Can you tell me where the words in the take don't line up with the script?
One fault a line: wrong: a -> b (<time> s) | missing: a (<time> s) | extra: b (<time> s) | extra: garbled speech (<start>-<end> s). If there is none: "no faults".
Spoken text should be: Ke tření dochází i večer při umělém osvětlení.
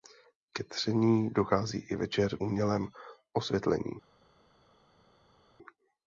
missing: při (2.4 s)